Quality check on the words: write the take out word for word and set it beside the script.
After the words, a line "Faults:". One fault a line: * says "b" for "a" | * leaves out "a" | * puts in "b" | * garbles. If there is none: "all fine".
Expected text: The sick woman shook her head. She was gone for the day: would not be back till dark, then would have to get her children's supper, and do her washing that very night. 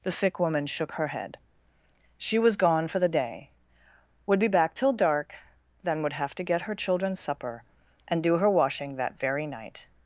The sick woman shook her head. She was gone for the day: would be back till dark, then would have to get her children's supper, and do her washing that very night.
Faults:
* leaves out "not"